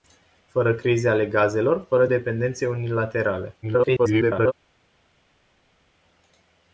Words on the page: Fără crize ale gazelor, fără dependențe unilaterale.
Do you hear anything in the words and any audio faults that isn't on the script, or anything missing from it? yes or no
yes